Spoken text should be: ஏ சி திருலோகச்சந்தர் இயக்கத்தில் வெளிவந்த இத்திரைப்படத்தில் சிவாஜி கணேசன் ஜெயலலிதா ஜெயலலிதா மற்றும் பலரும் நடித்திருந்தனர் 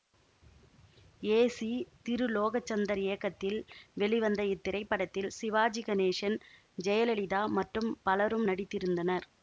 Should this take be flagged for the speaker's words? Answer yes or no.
yes